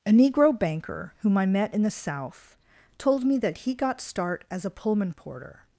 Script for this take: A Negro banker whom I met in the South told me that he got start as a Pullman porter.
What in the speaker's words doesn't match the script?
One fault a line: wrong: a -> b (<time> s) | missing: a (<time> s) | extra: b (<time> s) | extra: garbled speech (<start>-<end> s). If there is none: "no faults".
no faults